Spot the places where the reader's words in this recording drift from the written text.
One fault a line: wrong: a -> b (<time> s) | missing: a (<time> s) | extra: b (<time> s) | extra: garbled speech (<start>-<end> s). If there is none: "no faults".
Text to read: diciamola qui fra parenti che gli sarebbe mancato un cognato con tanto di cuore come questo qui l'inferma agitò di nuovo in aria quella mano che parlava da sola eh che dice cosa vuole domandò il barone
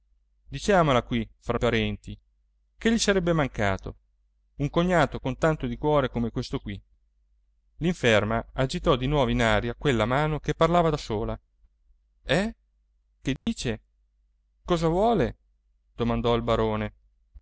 no faults